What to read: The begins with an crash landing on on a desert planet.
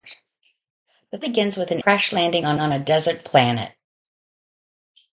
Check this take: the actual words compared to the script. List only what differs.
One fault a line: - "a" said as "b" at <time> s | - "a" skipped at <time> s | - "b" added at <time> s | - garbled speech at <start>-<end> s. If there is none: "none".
none